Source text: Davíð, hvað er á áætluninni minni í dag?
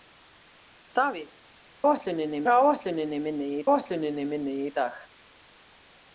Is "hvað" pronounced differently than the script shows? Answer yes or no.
yes